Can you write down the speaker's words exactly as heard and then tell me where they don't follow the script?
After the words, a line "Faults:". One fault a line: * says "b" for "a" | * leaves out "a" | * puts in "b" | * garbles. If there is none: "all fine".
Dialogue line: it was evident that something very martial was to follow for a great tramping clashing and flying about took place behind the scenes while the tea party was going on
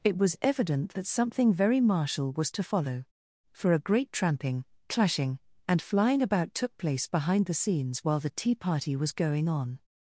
it was evident that something very martial was to follow for a great tramping clashing and flying about took place behind the scenes while the tea party was going on
Faults:
all fine